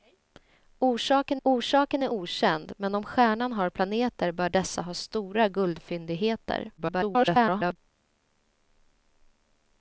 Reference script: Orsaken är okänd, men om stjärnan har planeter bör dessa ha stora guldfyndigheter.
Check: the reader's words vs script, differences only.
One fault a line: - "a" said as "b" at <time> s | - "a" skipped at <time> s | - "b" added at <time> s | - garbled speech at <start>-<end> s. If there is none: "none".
- "orsaken" added at 1.4 s
- garbled speech at 6.8-7.8 s